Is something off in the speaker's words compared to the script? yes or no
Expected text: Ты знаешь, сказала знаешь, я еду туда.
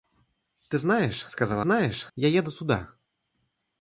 no